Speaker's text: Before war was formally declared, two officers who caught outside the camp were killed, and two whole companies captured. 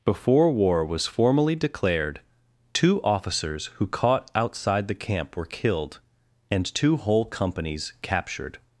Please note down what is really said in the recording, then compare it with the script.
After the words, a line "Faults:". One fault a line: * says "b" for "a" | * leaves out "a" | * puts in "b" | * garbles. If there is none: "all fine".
Before war was formally declared, two officers who caught outside the camp were killed, and two whole companies captured.
Faults:
all fine